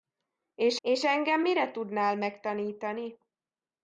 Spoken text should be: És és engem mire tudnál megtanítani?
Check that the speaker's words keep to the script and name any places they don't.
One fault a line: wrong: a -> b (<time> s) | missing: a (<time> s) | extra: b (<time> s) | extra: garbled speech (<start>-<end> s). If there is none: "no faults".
no faults